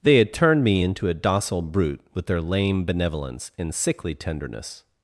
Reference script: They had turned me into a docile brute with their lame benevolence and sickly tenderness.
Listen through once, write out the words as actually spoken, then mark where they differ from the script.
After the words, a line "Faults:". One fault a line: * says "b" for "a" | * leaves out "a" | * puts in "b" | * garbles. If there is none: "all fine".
They had turned me into a docile brute with their lame benevolence and sickly tenderness.
Faults:
all fine